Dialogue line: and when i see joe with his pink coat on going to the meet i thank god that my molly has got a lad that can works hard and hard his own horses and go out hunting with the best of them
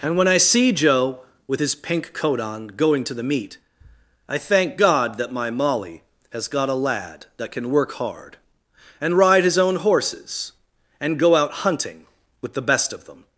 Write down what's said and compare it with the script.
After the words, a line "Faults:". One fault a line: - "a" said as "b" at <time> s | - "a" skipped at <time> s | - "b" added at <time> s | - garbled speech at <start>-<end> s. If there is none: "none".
and when i see joe with his pink coat on going to the meet i thank god that my molly has got a lad that can work hard and ride his own horses and go out hunting with the best of them
Faults:
- "works" said as "work" at 7.7 s
- "hard" said as "ride" at 9.2 s